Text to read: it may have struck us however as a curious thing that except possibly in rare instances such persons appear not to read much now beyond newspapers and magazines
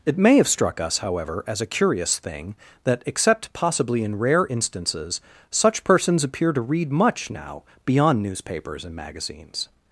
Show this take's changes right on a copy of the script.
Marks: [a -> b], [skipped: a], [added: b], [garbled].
it may have struck us however as a curious thing that except possibly in rare instances such persons appear [skipped: not] to read much now beyond newspapers and magazines